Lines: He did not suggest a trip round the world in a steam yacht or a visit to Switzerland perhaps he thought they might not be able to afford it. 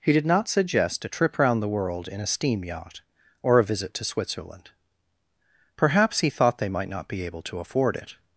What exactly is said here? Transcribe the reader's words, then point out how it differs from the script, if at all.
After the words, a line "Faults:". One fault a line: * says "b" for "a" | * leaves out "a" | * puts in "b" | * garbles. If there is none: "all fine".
He did not suggest a trip round the world in a steam yacht or a visit to Switzerland perhaps he thought they might not be able to afford it.
Faults:
all fine